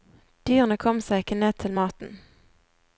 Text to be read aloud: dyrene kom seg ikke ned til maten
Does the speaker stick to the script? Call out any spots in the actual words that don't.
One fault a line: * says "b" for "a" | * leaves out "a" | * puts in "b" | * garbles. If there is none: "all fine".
all fine